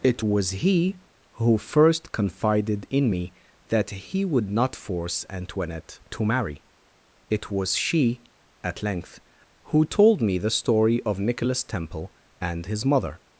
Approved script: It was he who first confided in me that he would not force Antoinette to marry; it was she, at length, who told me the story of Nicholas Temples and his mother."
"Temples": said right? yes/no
no